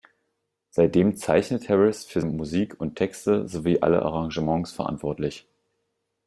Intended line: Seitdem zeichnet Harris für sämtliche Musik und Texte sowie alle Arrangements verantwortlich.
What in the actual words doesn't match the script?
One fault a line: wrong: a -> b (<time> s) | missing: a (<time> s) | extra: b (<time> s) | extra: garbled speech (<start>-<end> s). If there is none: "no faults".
missing: sämtliche (2.2 s)